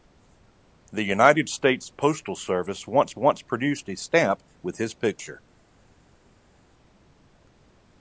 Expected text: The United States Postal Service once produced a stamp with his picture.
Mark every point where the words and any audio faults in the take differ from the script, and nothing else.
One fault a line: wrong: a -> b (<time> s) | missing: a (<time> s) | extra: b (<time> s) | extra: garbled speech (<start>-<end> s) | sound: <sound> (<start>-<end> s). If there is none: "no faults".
extra: once (3.2 s)